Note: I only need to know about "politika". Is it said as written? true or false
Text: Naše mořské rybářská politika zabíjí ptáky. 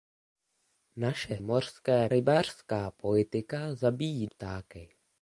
true